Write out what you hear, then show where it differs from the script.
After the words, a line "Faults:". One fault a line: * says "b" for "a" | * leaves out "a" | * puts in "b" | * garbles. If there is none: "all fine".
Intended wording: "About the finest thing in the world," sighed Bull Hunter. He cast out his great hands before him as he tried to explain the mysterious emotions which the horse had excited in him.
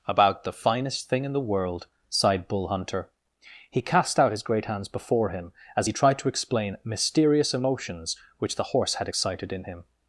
"About the finest thing in the world," sighed Bull Hunter. He cast out his great hands before him as he tried to explain mysterious emotions which the horse had excited in him.
Faults:
* leaves out "the"